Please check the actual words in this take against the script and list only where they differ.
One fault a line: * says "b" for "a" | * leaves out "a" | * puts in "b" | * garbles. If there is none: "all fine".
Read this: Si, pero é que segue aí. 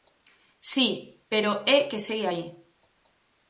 all fine